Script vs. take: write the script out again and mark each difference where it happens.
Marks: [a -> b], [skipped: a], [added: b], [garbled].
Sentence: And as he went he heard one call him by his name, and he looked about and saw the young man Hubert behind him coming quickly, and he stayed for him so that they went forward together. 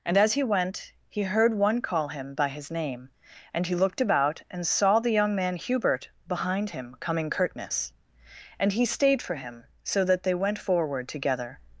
And as he went he heard one call him by his name, and he looked about and saw the young man Hubert behind him coming [quickly, -> curtness] and he stayed for him so that they went forward together.